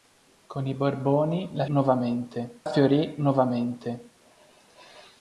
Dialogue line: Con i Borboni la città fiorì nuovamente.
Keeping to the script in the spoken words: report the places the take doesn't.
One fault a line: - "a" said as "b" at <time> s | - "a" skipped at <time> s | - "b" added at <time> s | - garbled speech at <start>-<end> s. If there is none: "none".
- "città" said as "nuovamente" at 1.7 s